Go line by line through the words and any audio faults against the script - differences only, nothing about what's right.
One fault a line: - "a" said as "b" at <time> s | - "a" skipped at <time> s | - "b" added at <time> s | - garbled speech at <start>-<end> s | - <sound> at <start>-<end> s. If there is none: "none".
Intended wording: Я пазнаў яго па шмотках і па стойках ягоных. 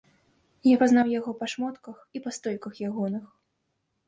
none